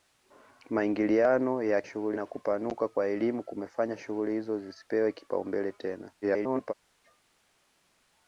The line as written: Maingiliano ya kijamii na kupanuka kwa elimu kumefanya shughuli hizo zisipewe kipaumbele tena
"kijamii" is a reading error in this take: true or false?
true